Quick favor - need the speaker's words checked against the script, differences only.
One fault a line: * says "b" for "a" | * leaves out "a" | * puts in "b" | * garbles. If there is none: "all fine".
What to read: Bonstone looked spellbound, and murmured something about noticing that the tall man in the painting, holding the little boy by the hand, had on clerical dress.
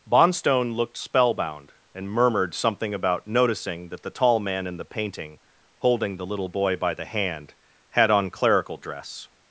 all fine